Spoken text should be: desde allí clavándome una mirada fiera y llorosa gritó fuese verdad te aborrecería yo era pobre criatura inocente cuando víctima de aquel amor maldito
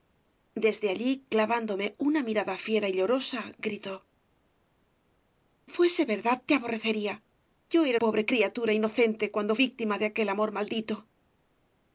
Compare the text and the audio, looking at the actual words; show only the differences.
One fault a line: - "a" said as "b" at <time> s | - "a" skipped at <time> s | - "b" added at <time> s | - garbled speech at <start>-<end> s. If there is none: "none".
none